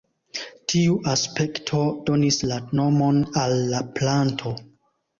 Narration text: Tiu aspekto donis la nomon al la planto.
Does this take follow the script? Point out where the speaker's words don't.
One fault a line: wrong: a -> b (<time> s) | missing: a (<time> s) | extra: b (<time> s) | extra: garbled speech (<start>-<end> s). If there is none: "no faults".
no faults